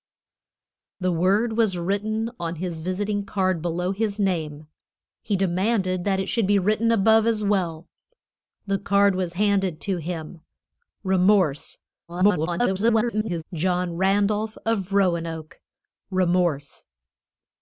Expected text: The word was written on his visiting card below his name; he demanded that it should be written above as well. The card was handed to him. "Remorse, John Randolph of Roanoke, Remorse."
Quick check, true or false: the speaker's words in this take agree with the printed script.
false